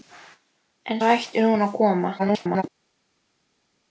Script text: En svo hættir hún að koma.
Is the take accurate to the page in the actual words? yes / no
no